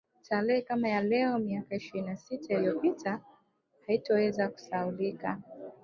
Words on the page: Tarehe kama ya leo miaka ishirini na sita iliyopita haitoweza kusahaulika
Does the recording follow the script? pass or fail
pass